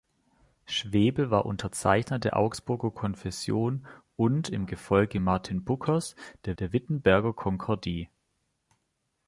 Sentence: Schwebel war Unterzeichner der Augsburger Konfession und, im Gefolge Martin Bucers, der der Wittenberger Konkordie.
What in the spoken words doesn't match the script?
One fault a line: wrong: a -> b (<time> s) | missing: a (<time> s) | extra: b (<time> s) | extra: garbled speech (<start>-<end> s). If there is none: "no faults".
no faults